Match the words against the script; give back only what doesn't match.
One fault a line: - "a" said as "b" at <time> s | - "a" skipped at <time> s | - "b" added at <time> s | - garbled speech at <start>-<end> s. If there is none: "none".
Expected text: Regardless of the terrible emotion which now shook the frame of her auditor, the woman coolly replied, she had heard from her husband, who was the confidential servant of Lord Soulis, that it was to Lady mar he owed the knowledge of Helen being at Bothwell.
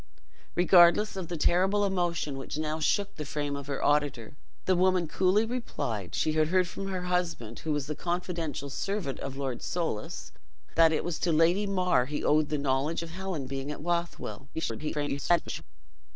- garbled speech at 14.5-15.6 s